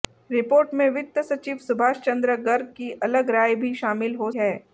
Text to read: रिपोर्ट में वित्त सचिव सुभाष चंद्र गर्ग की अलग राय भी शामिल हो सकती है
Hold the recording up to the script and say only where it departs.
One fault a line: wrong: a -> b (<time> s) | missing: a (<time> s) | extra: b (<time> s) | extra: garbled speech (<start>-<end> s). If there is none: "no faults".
missing: सकती (4.3 s)